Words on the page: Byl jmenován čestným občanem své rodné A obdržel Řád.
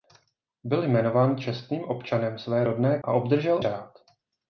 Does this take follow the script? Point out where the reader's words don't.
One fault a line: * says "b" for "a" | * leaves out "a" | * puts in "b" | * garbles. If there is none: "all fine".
all fine